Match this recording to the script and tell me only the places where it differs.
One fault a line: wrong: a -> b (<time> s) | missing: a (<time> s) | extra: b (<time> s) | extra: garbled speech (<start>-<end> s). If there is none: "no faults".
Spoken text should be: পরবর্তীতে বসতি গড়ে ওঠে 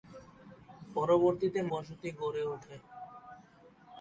no faults